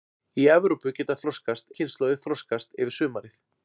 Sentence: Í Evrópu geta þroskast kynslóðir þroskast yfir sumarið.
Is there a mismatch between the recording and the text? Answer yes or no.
no